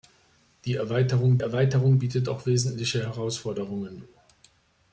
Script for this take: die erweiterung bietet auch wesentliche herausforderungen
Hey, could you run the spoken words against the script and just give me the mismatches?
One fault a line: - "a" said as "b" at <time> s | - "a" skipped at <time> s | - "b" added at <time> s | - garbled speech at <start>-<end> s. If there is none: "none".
- "erweiterung" added at 1.4 s